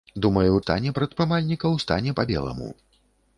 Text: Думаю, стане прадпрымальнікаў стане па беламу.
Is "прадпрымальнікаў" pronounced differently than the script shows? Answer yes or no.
no